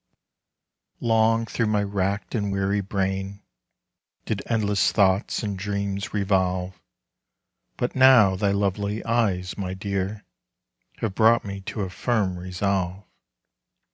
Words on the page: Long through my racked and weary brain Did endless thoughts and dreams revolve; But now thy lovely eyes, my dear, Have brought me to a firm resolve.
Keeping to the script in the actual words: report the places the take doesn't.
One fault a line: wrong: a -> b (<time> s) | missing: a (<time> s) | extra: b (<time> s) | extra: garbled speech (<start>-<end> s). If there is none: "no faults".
no faults